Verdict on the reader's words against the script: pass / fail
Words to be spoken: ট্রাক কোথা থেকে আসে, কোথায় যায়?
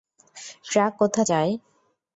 fail